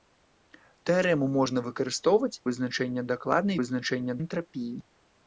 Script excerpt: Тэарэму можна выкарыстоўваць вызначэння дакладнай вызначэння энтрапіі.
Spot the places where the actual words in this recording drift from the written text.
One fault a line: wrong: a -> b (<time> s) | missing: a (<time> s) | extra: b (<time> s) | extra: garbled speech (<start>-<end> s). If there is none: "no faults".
no faults